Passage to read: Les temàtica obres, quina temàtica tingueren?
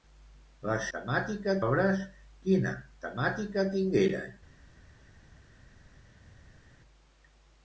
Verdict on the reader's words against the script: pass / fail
pass